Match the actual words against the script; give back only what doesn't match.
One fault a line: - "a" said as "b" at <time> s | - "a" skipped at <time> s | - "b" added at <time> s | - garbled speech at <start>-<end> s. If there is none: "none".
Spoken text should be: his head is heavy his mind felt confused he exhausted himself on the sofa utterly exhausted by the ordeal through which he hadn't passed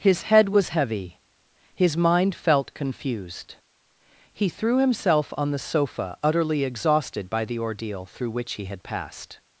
- "is" said as "was" at 0.5 s
- "exhausted" said as "threw" at 4.5 s
- "hadn't" said as "had" at 8.7 s